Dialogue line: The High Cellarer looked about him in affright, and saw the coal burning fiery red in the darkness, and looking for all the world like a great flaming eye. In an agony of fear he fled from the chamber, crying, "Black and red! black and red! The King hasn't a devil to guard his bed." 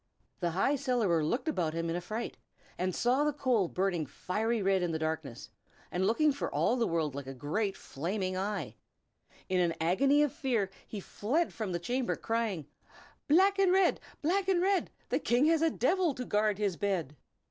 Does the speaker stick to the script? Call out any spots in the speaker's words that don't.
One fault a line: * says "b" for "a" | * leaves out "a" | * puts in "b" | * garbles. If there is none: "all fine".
* says "has" for "hasn't"